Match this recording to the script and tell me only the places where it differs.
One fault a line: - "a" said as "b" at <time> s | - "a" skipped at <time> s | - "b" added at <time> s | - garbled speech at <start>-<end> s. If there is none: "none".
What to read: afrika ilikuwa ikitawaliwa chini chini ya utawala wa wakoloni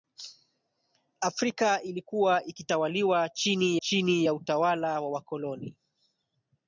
none